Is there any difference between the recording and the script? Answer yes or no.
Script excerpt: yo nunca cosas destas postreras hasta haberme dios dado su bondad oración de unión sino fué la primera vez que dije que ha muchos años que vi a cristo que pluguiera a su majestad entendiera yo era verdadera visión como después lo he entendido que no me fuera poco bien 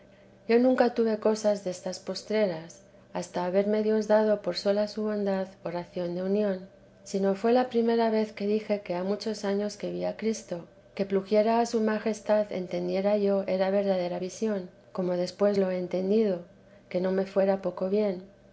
yes